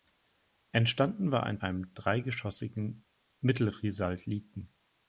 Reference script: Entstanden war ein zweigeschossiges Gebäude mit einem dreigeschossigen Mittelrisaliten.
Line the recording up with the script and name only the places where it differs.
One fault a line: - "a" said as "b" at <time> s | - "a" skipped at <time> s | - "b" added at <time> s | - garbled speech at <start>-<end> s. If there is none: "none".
- "zweigeschossiges Gebäude mit" skipped at 1.6 s